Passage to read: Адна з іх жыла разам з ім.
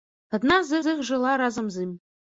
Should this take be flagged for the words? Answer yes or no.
yes